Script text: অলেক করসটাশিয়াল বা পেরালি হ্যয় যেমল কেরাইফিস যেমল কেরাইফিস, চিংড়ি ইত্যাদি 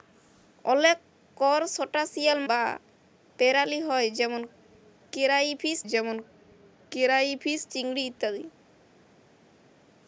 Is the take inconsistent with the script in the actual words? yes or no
no